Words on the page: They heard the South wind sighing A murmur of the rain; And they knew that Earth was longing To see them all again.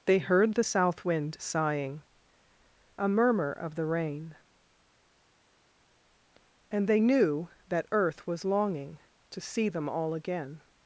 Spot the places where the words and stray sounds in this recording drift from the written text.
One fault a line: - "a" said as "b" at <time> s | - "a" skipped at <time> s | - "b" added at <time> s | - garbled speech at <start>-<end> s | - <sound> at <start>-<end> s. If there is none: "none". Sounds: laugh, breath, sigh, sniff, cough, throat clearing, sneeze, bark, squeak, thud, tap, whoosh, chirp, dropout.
none